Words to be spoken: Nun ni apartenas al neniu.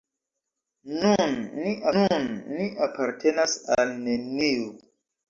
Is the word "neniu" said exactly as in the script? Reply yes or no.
yes